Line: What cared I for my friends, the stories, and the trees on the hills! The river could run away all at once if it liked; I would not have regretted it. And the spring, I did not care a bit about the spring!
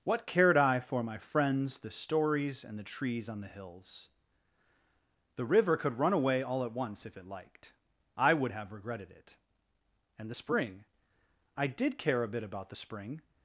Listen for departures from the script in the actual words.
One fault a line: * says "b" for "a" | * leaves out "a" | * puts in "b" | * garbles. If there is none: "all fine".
* leaves out "not"
* leaves out "not"